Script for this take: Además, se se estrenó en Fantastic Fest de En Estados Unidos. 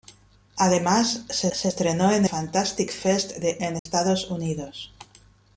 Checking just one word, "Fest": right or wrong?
right